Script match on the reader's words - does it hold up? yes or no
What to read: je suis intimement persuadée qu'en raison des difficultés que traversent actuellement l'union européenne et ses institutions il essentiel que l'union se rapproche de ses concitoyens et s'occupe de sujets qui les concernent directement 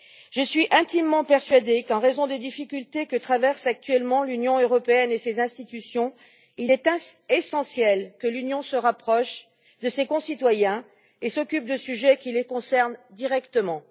no